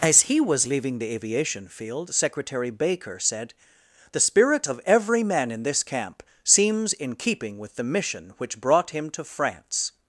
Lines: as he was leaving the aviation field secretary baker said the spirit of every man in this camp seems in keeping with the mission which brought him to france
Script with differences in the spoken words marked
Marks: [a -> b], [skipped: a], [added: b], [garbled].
as he was leaving the aviation field secretary baker said the spirit of every man in this camp seems in keeping with the mission which brought him to france